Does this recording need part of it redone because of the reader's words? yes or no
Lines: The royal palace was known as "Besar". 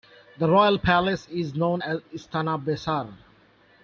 yes